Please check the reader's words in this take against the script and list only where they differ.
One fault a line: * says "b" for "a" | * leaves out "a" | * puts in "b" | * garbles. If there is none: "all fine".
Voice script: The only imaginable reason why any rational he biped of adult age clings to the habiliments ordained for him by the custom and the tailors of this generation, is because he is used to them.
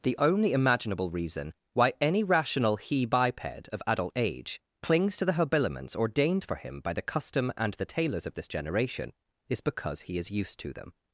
all fine